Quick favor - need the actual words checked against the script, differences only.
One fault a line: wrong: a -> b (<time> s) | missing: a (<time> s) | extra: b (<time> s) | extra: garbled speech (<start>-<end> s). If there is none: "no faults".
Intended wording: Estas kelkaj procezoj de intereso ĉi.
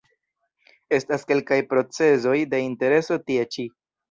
extra: tie (3.3 s)